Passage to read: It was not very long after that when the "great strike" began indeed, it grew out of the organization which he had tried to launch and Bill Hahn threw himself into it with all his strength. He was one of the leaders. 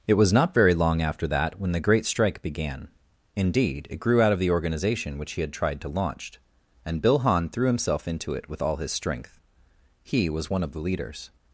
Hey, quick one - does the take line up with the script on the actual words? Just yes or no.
yes